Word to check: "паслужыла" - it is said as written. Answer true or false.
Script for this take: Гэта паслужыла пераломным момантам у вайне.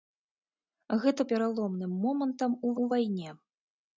false